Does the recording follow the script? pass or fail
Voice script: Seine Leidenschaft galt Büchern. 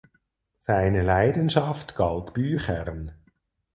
pass